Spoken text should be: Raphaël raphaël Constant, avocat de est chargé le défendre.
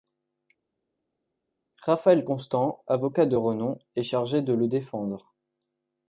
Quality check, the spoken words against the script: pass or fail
fail